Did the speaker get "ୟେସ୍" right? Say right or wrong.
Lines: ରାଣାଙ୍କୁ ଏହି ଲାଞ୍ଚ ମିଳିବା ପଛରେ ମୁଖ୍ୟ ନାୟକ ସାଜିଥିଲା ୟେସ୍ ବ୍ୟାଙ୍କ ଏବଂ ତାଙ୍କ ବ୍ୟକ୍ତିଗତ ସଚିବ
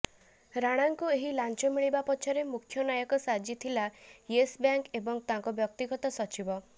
right